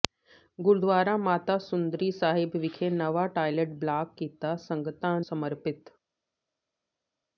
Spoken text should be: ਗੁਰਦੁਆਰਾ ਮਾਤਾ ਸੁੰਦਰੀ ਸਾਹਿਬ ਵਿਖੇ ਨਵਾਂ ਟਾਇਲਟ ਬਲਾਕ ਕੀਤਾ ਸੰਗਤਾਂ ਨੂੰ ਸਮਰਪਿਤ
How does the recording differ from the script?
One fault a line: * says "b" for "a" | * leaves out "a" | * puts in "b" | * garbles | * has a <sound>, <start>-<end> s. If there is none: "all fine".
* leaves out "ਨੂੰ"